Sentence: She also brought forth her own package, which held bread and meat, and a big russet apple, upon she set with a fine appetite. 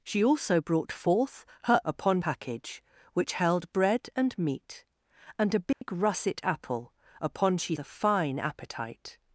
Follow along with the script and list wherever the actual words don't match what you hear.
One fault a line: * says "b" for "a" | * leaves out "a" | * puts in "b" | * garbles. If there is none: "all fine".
* says "upon" for "own"
* leaves out "set with"